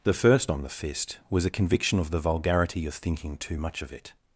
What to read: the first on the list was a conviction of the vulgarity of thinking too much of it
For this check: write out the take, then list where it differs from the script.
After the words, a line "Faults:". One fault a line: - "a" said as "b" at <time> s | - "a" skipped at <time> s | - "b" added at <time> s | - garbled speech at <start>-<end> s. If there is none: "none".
the first on the fist was a conviction of the vulgarity of thinking too much of it
Faults:
- "list" said as "fist" at 0.7 s